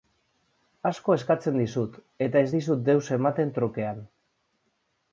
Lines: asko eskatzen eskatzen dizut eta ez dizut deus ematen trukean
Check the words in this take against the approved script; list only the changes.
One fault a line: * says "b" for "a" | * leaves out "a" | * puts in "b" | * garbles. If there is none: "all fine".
* leaves out "eskatzen"